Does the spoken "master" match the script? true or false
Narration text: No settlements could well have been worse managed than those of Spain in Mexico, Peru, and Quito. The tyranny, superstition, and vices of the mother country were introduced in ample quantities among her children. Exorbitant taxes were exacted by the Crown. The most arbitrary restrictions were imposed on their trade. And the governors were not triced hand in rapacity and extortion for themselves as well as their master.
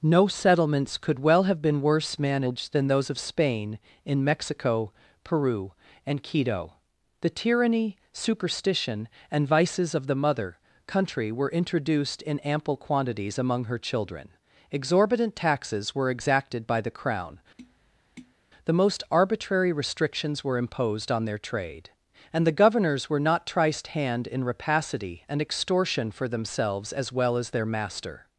true